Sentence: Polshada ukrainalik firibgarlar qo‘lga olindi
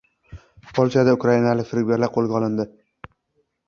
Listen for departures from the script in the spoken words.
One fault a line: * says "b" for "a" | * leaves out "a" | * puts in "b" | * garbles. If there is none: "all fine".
all fine